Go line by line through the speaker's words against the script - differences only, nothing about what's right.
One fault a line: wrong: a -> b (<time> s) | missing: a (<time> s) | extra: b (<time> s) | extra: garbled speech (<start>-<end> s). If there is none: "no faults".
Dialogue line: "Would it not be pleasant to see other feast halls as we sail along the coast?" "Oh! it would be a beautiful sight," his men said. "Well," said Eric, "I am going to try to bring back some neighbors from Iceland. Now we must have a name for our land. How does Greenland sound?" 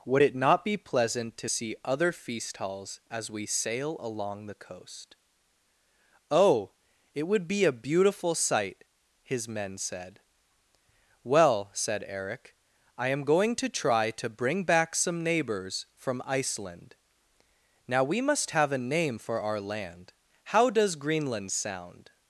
no faults